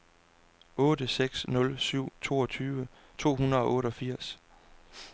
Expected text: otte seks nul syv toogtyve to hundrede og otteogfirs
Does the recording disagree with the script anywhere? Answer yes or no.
no